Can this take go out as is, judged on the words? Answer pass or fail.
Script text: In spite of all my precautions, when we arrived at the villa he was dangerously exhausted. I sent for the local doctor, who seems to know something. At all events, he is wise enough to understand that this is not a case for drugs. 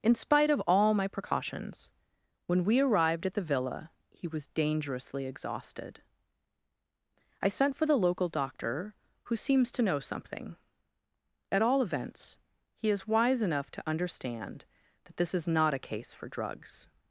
pass